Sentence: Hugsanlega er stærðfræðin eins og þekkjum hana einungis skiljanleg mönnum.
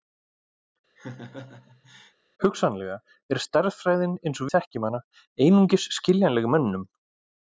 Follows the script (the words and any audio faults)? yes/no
no